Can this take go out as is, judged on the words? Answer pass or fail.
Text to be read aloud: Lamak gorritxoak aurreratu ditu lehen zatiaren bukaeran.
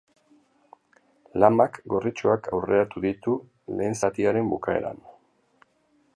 pass